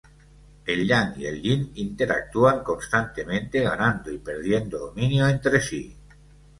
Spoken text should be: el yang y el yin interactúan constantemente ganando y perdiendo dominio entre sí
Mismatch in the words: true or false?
false